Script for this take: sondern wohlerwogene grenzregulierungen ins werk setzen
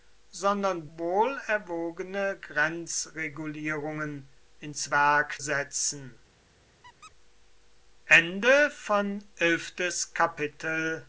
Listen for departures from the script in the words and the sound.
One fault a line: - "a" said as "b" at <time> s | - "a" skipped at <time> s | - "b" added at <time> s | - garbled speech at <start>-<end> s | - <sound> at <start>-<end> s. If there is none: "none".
- squeak at 6.8-7.1 s